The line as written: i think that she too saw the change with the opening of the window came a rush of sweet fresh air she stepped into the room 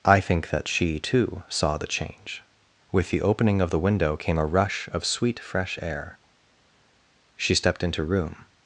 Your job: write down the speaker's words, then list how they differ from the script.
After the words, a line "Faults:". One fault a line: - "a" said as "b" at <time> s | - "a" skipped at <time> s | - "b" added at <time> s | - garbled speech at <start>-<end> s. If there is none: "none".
i think that she too saw the change with the opening of the window came a rush of sweet fresh air she stepped into room
Faults:
- "the" skipped at 8.0 s